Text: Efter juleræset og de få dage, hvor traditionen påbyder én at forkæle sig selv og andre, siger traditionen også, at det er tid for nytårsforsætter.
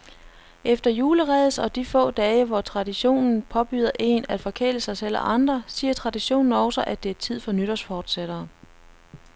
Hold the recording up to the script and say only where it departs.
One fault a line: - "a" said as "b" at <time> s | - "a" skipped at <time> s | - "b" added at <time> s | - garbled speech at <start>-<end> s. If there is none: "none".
none